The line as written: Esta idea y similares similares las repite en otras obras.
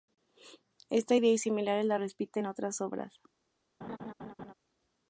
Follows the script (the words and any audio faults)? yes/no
no